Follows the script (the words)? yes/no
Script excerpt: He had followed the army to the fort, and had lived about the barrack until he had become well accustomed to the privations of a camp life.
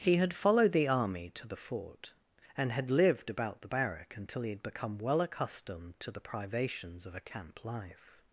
yes